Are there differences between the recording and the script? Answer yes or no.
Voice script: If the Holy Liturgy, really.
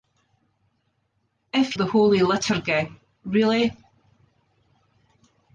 no